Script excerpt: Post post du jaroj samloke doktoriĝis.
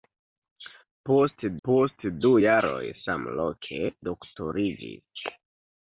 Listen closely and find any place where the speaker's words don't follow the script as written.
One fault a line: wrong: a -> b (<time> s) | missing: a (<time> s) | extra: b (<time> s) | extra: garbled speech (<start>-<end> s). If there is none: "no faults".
no faults